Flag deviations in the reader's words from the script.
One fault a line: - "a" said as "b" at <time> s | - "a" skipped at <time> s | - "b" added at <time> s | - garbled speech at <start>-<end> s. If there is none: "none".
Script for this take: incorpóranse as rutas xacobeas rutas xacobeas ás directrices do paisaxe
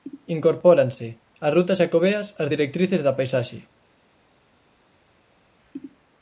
- "rutas xacobeas" skipped at 2.3 s
- "do" said as "da" at 3.0 s